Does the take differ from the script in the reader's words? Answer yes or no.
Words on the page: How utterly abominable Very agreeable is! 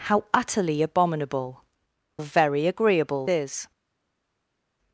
no